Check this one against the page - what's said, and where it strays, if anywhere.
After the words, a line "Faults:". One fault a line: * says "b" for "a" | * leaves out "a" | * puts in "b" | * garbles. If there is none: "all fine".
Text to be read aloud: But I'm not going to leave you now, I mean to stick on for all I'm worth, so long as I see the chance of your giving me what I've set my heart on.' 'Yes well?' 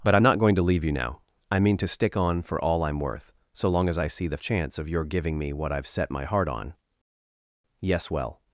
But I'm not going to leave you now, I mean to stick on for all I'm worth, so long as I see the chance of your giving me what I've set my heart on.' 'Yes well?'
Faults:
all fine